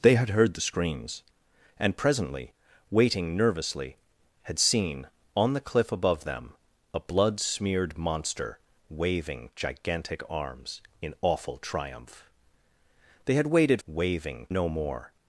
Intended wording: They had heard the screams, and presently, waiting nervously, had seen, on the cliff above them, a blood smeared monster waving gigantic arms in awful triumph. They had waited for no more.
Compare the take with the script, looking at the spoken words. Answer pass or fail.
fail